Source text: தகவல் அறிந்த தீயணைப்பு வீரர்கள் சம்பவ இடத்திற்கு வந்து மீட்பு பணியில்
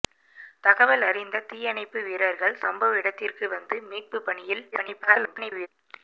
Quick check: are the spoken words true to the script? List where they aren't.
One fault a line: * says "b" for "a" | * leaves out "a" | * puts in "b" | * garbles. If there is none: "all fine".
* garbles